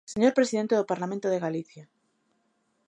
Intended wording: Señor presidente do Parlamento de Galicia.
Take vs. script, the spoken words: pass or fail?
pass